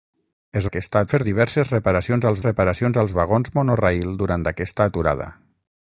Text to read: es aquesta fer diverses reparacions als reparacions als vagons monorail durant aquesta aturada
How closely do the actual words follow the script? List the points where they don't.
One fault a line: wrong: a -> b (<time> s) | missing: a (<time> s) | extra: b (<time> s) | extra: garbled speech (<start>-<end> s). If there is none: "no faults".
no faults